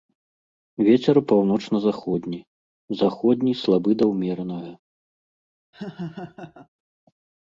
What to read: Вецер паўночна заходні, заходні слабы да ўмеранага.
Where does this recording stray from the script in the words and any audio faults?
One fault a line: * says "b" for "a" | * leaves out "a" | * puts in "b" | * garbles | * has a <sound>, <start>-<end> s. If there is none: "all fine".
* has a laugh, 5.7-6.7 s